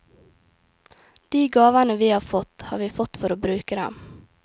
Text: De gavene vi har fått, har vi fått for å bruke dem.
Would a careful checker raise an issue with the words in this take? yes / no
no